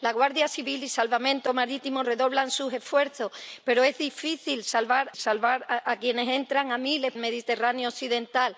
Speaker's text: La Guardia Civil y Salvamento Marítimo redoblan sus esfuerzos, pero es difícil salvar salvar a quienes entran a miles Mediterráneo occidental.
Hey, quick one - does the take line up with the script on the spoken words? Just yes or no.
yes